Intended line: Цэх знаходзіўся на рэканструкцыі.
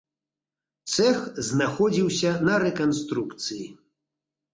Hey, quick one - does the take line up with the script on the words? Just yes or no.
yes